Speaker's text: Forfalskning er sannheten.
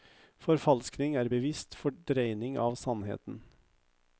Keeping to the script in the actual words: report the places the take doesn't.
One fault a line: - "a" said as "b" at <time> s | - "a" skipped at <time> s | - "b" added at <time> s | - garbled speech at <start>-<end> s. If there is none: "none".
- "bevisst fordreining av" added at 1.3 s